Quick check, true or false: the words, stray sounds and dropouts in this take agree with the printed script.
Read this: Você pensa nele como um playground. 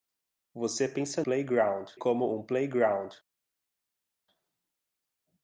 false